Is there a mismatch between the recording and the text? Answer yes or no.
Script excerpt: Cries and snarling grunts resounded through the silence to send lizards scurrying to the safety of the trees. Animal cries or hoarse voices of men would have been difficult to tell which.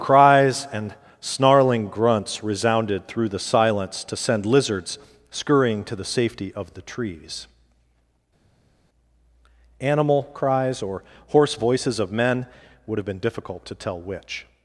no